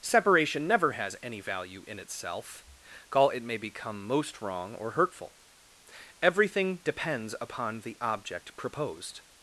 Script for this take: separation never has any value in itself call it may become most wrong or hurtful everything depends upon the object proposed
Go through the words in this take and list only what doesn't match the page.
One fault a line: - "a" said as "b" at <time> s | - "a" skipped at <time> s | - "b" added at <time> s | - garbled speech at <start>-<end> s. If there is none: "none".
none